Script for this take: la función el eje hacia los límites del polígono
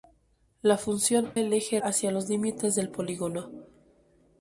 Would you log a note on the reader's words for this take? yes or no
no